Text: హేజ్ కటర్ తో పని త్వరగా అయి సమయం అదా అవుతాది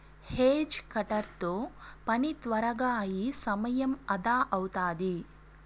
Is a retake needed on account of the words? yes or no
no